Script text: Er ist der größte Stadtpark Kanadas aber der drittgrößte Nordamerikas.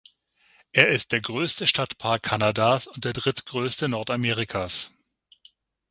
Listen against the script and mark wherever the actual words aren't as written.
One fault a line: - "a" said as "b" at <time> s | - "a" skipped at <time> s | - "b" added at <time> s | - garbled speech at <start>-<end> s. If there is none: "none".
- "aber" said as "und" at 2.9 s